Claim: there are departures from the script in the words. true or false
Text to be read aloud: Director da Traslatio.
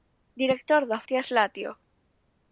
false